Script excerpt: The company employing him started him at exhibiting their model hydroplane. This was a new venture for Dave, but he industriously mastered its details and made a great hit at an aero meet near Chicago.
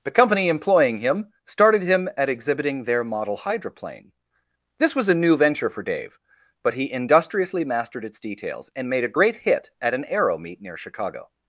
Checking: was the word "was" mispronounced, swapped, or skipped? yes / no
no